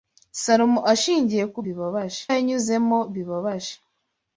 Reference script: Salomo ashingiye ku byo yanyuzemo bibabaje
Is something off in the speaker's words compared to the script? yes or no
yes